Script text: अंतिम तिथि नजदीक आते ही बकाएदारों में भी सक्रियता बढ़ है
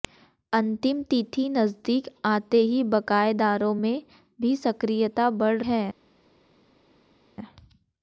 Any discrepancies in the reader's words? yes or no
no